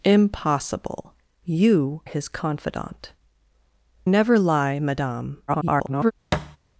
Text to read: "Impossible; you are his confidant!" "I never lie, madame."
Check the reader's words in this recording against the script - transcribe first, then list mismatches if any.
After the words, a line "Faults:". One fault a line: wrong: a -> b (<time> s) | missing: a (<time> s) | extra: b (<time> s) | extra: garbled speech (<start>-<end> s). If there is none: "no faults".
"Impossible; you his confidant!" "never lie, madame." [garbled]
Faults:
missing: are (2.0 s)
missing: I (3.1 s)
extra: garbled speech (5.5-6.1 s)